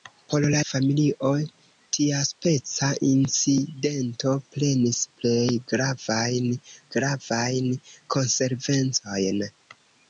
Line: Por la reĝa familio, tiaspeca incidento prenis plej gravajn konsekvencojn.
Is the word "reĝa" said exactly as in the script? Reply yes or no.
no